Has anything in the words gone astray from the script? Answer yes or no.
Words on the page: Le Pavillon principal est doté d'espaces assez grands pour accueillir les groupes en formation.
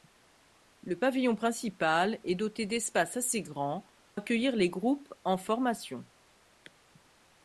yes